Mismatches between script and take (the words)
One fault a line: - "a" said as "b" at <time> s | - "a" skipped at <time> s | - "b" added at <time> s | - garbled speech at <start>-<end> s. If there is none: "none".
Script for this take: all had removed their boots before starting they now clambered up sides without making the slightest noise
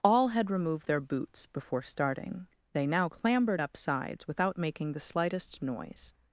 none